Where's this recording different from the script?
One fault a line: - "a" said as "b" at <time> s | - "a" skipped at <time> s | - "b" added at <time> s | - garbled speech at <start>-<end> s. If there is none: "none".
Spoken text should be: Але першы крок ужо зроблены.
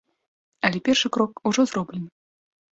none